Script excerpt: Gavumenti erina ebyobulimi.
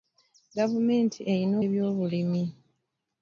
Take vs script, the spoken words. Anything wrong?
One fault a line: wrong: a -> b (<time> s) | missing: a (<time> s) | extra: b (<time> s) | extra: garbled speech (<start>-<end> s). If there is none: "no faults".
no faults